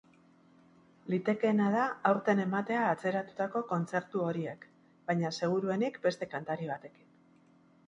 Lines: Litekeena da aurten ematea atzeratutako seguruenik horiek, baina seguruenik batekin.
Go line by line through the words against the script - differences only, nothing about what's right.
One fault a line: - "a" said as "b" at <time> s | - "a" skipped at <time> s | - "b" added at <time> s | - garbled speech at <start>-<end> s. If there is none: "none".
- "seguruenik" said as "kontzertu" at 3.7 s
- "beste kantari" added at 6.1 s